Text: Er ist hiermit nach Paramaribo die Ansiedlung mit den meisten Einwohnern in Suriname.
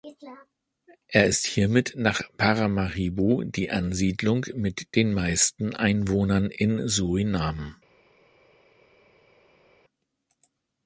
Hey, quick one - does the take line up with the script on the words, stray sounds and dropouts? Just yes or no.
yes